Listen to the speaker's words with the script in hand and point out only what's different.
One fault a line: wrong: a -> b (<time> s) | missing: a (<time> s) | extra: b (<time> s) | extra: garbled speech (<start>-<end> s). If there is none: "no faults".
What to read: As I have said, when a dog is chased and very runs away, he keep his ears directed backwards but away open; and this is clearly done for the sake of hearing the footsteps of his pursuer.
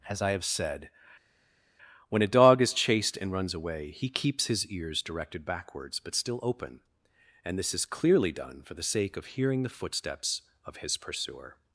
missing: very (3.3 s)
wrong: keep -> keeps (4.1 s)
wrong: away -> still (6.1 s)